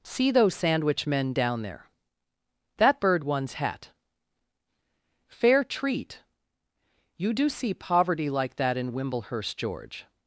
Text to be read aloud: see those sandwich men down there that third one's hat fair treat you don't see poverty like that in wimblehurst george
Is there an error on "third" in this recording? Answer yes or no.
yes